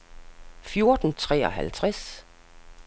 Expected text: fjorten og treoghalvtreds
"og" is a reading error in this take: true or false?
false